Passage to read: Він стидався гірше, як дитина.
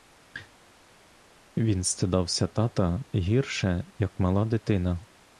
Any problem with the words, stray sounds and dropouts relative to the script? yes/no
yes